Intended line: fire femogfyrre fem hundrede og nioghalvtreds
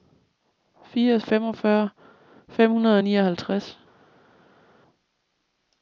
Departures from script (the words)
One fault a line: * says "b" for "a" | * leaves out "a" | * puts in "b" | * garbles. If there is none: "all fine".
all fine